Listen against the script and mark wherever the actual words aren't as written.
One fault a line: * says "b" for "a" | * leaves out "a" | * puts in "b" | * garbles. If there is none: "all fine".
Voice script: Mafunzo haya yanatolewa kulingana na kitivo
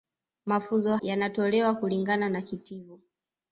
* leaves out "haya"